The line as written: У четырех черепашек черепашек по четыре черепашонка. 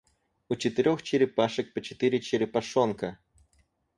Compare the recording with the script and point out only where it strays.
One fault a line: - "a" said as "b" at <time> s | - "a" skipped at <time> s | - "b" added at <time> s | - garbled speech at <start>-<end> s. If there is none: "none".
- "черепашек" skipped at 1.8 s